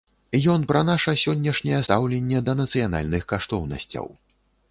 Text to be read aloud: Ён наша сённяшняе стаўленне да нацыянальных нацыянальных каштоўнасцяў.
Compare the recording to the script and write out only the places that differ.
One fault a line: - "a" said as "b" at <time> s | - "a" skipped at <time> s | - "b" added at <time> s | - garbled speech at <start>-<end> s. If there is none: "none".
- "пра" added at 0.7 s
- "нацыянальных" skipped at 3.2 s